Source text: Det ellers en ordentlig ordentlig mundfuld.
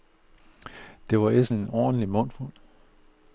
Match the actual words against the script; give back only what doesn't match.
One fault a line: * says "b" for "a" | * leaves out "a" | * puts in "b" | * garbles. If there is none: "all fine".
* puts in "var"
* leaves out "ordentlig"